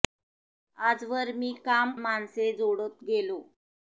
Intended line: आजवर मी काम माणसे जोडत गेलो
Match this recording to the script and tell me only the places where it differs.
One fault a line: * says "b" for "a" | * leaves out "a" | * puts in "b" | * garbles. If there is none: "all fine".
all fine